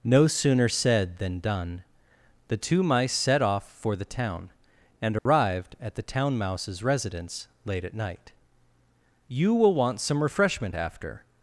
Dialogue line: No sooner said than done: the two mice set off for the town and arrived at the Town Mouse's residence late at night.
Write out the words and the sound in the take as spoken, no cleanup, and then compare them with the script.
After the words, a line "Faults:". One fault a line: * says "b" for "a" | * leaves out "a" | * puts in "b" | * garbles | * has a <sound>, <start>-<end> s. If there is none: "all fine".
No sooner said than done: the two mice set off for the town and arrived at the Town Mouse's residence late at night. "You will want some refreshment after
Faults:
* has a dropout, 5.2-5.3 s
* puts in "You will want some refreshment after"